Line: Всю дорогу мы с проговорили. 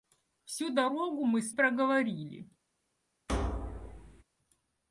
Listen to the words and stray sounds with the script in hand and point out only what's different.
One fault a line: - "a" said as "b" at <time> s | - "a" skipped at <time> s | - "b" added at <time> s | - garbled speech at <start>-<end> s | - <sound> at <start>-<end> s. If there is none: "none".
- thud at 3.3-4.2 s